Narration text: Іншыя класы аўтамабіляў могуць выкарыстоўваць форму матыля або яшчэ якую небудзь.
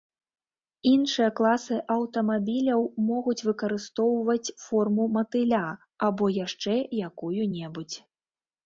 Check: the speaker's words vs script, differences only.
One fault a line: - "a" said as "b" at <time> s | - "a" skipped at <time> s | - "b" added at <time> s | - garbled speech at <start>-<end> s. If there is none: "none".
none